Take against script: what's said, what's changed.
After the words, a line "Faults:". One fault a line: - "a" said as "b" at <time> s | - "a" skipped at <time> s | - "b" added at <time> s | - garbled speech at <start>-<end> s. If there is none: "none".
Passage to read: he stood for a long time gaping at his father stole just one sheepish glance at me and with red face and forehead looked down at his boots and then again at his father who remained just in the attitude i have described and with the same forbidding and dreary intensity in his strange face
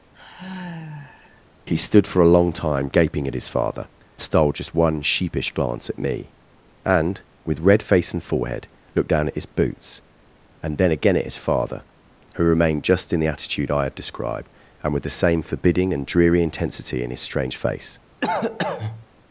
he stood for a long time gaping at his father stole just one sheepish glance at me and with red face and forehead looked down at his boots and then again at his father who remained just in the attitude i have described and with the same forbidding and dreary intensity in his strange face
Faults:
none